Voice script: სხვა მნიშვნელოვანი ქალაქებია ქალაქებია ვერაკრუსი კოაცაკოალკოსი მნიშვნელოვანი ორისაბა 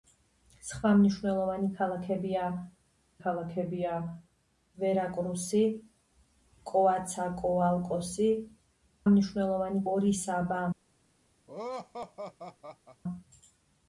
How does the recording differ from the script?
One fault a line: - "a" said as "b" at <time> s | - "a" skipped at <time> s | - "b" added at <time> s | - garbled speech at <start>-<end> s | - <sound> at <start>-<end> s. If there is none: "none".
- laugh at 11.5-13.0 s